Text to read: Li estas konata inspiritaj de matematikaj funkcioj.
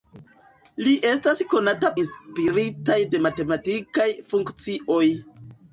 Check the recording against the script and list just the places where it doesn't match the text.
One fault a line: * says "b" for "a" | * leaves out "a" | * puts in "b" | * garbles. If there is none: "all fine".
all fine